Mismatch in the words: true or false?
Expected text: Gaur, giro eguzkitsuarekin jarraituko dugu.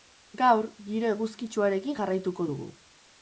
false